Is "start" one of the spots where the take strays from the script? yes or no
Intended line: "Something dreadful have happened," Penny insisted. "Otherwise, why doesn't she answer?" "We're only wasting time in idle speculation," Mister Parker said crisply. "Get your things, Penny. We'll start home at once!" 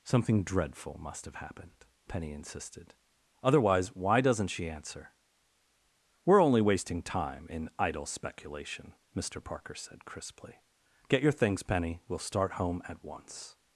no